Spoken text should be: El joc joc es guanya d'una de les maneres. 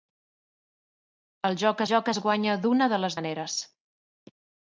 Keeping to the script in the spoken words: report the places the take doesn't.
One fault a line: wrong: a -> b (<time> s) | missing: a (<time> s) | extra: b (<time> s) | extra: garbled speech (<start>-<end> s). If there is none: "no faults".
no faults